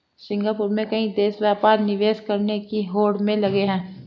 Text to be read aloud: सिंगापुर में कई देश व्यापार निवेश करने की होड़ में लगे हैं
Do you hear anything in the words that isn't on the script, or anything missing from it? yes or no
no